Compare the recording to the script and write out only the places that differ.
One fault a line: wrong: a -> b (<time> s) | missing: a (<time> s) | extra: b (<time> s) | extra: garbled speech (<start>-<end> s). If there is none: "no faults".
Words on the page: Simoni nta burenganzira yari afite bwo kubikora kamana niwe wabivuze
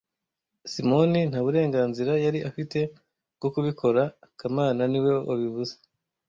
no faults